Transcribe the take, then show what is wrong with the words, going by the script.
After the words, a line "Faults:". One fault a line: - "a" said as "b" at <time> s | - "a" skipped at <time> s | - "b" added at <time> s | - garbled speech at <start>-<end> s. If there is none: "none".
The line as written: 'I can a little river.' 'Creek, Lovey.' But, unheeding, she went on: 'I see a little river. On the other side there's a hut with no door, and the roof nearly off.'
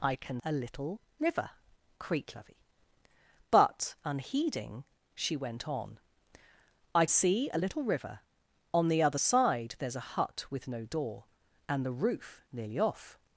'I can a little river.' 'Creek, Lovey.' But, unheeding, she went on: 'I see a little river. On the other side there's a hut with no door, and the roof nearly off.'
Faults:
none